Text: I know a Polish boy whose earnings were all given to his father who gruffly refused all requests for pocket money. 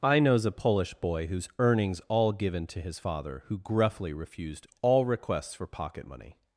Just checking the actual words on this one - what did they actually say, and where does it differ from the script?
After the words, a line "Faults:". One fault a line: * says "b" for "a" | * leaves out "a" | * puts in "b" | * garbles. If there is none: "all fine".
I knows a Polish boy whose earnings all given to his father who gruffly refused all requests for pocket money.
Faults:
* says "knows" for "know"
* leaves out "were"